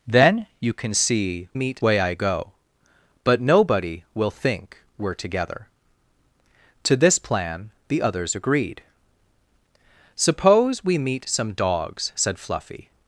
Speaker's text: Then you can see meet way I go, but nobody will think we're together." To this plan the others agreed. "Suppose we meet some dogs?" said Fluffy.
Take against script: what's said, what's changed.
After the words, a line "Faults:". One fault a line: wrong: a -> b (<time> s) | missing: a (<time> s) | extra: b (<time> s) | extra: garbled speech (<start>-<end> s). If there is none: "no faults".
Then you can see meet way I go, but nobody will think we're together." To this plan the others agreed. "Suppose we meet some dogs?" said Fluffy.
Faults:
no faults